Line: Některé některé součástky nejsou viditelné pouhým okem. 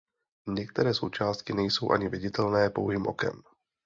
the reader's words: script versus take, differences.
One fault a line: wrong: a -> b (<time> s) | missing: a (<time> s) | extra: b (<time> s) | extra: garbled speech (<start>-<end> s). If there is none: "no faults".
missing: některé (0.9 s)
extra: ani (1.9 s)